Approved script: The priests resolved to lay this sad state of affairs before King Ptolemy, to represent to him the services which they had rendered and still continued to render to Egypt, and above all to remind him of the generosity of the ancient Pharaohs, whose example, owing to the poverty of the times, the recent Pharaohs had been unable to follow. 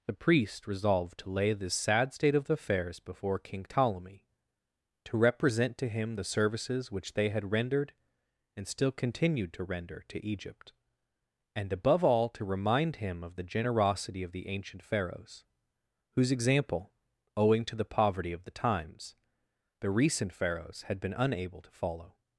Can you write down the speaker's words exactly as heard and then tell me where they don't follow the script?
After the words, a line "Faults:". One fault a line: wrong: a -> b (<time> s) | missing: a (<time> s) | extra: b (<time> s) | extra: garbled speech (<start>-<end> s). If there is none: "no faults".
The priest resolved to lay this sad state of affairs before King Ptolemy, to represent to him the services which they had rendered and still continued to render to Egypt, and above all to remind him of the generosity of the ancient Pharaohs, whose example, owing to the poverty of the times, the recent Pharaohs had been unable to follow.
Faults:
wrong: priests -> priest (0.1 s)